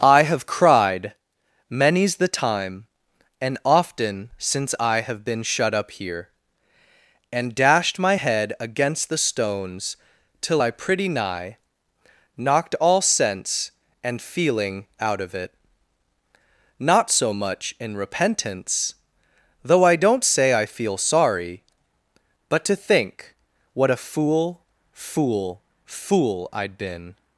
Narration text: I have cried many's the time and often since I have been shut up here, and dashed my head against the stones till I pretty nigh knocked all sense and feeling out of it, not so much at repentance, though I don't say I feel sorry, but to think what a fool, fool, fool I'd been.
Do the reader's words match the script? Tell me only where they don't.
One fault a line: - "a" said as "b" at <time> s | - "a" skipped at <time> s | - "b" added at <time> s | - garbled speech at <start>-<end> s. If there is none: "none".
- "at" said as "in" at 17.8 s